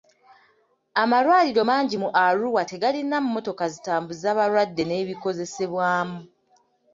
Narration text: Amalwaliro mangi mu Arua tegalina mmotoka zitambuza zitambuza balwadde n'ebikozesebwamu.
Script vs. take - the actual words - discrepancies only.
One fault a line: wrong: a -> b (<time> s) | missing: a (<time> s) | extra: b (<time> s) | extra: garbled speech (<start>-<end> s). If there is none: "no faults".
missing: zitambuza (4.3 s)